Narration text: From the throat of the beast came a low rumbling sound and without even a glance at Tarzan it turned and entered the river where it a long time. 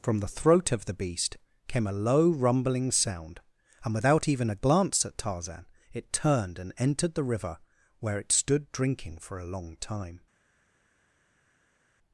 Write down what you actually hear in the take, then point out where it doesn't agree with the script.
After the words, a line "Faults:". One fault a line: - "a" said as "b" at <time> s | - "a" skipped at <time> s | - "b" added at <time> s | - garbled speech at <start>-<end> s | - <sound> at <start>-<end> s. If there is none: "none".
From the throat of the beast came a low rumbling sound and without even a glance at Tarzan it turned and entered the river where it stood drinking for a long time.
Faults:
- "stood drinking for" added at 8.3 s